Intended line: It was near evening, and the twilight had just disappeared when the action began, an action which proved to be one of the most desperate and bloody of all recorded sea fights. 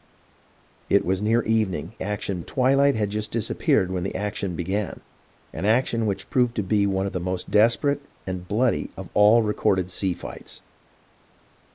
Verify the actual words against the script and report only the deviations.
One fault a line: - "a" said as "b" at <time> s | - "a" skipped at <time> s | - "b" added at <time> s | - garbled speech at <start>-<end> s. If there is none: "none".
- "and" said as "action" at 2.0 s